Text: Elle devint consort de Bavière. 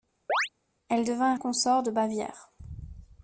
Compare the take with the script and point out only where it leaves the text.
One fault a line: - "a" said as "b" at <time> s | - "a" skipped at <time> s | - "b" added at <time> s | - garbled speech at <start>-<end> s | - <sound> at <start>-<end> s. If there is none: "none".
- chirp at 0.3-0.5 s